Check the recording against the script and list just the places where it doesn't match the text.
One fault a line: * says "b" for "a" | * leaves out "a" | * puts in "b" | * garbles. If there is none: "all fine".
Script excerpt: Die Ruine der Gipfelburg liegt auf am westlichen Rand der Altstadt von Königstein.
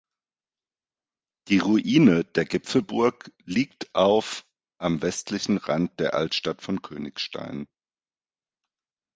all fine